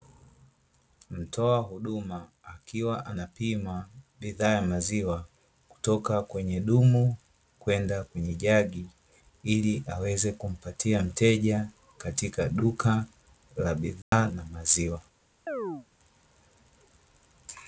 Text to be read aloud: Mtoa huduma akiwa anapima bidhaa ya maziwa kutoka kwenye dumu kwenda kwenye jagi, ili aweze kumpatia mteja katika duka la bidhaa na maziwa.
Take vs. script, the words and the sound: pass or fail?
fail